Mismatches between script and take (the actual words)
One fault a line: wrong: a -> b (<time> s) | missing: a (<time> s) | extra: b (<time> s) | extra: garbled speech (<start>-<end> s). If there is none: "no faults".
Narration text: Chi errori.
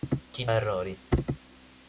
no faults